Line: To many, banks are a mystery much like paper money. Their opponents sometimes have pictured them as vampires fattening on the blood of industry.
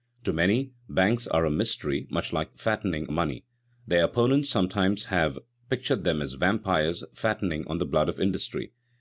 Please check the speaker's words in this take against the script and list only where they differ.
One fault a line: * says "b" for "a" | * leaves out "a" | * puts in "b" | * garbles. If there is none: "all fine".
* says "fattening" for "paper"